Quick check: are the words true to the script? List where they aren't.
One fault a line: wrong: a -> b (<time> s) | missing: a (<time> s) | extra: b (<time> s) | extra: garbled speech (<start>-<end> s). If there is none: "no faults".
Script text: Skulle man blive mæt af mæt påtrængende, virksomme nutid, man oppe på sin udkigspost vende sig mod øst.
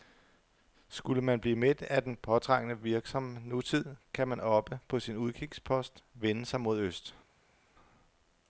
wrong: mæt -> den (2.0 s)
extra: kan (4.1 s)